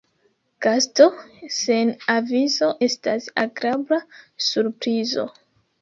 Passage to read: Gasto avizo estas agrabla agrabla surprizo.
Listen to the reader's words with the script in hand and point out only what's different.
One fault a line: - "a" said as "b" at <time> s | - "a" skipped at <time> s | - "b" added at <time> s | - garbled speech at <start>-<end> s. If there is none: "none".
- "sen" added at 1.6 s
- "agrabla" skipped at 4.0 s